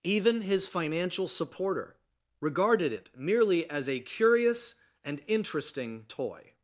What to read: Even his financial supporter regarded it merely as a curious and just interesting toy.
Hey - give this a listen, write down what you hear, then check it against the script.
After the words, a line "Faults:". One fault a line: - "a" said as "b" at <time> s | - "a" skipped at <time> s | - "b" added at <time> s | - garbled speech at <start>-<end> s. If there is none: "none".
Even his financial supporter regarded it merely as a curious and interesting toy.
Faults:
- "just" skipped at 5.2 s